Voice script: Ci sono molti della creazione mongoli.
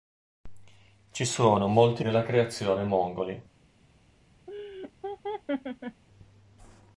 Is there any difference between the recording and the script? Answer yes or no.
no